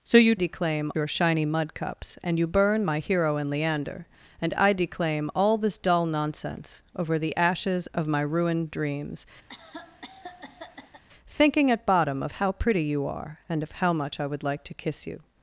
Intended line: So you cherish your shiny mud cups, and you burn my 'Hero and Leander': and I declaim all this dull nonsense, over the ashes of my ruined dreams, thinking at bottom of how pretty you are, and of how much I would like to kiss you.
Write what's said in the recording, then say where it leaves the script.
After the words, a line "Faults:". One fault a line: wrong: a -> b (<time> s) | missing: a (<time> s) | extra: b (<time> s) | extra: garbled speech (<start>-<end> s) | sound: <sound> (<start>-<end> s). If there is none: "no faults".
So you declaim your shiny mud cups, and you burn my 'Hero and Leander': and I declaim all this dull nonsense, over the ashes of my ruined dreams, thinking at bottom of how pretty you are, and of how much I would like to kiss you.
Faults:
wrong: cherish -> declaim (0.3 s)
sound: cough (9.5-11.0 s)